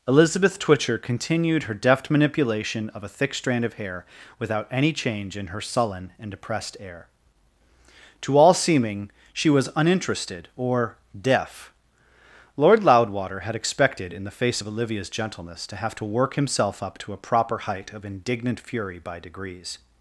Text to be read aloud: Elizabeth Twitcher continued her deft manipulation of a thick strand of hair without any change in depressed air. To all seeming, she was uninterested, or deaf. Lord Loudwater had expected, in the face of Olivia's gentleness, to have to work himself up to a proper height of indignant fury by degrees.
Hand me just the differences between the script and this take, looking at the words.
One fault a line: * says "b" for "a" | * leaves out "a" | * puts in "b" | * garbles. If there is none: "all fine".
* puts in "her sullen and"